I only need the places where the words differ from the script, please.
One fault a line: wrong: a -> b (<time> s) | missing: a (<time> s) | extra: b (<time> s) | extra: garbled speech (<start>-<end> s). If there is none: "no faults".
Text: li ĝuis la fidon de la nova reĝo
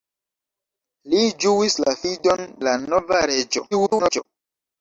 missing: de (2.4 s)
extra: garbled speech (3.7-4.2 s)